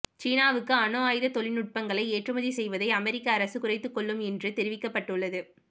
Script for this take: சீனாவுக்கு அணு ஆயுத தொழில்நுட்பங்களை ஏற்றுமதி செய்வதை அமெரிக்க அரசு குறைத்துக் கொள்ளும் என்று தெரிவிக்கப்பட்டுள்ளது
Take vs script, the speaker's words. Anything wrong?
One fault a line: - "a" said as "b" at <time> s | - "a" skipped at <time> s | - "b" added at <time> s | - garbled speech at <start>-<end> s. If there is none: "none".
none